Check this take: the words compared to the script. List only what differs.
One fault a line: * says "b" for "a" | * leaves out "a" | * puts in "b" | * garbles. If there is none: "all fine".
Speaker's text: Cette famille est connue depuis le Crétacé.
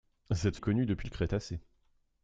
* leaves out "famille"